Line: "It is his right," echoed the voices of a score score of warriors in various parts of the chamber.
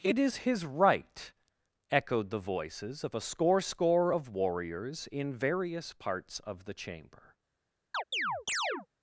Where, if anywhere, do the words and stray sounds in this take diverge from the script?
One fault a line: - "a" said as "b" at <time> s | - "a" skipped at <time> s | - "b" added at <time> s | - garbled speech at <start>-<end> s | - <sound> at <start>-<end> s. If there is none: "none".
- chirp at 7.9-8.9 s